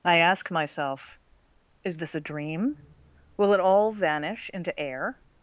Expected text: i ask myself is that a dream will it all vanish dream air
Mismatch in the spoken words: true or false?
true